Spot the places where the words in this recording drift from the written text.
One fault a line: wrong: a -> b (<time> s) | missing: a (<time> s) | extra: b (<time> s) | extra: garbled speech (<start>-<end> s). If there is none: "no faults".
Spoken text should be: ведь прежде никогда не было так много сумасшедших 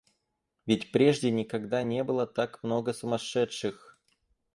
no faults